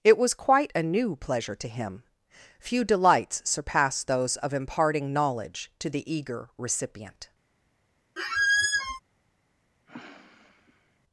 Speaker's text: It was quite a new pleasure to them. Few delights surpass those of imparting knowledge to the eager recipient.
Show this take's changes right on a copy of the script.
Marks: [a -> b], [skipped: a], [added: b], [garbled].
It was quite a new pleasure to [them. -> him] Few delights surpass those of imparting knowledge to the eager recipient.